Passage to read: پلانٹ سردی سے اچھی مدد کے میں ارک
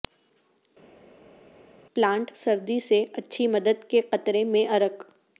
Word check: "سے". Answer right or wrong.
right